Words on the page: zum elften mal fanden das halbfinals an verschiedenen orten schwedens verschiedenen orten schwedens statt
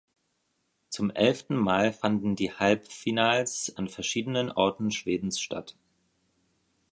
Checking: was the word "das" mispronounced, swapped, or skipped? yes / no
yes